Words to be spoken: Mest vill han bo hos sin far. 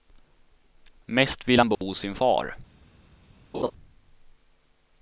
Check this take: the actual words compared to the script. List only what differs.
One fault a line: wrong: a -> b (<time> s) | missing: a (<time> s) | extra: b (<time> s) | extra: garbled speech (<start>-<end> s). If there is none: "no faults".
no faults